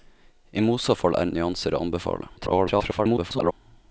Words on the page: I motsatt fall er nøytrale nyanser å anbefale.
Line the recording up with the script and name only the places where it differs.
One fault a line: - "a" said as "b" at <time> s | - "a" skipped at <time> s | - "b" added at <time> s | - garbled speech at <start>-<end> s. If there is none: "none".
- "nøytrale" skipped at 1.3 s
- garbled speech at 2.4-3.5 s